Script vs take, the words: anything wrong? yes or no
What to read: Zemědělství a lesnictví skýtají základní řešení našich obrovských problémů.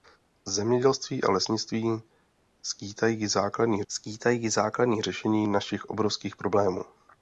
yes